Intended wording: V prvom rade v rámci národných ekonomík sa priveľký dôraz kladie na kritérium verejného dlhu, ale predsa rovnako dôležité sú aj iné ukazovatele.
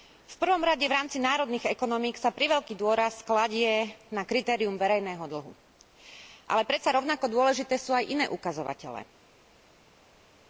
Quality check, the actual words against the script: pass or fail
pass